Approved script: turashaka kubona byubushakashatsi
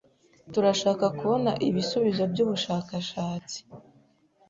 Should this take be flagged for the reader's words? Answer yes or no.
yes